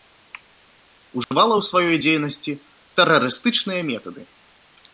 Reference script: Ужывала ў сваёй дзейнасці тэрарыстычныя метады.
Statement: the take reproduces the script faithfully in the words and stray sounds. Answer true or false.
false